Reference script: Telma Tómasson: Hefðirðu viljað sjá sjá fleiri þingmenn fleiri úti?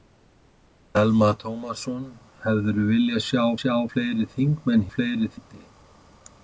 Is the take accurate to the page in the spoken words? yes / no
yes